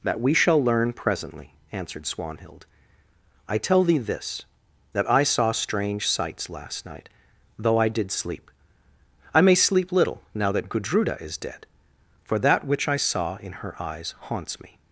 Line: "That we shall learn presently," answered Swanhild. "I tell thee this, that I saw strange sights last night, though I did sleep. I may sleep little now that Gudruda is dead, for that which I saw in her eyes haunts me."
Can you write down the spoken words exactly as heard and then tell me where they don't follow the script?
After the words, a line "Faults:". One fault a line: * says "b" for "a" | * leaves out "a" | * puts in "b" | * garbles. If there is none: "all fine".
"That we shall learn presently," answered Swanhild. "I tell thee this, that I saw strange sights last night, though I did sleep. I may sleep little now that Gudruda is dead, for that which I saw in her eyes haunts me."
Faults:
all fine